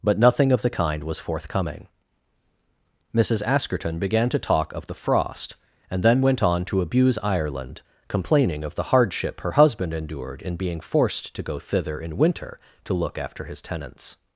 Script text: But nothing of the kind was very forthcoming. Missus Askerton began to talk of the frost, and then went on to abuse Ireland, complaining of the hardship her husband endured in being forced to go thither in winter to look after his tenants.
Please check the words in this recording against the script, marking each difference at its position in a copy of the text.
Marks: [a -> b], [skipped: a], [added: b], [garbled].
But nothing of the kind was [skipped: very] forthcoming. Missus Askerton began to talk of the frost, and then went on to abuse Ireland, complaining of the hardship her husband endured in being forced to go thither in winter to look after his tenants.